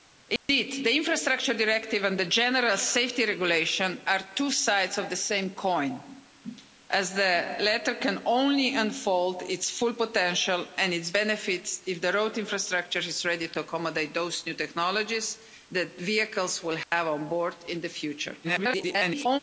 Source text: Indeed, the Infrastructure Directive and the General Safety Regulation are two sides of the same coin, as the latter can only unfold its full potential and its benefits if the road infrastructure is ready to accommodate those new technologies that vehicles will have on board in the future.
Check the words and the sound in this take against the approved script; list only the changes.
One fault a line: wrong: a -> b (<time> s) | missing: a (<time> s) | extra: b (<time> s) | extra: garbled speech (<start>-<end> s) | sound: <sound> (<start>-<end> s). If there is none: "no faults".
sound: dropout (0.4-0.5 s)
sound: dropout (16.8-16.9 s)
extra: garbled speech (18.4-19.4 s)